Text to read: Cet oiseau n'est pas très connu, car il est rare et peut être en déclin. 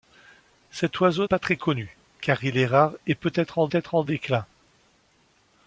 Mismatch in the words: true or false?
true